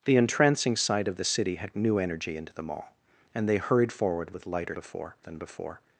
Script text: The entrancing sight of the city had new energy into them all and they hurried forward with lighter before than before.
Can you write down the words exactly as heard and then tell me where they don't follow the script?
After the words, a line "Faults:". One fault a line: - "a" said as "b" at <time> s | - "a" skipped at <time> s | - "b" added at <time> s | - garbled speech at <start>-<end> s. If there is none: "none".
The entrancing sight of the city had new energy into them all and they hurried forward with lighter before than before.
Faults:
none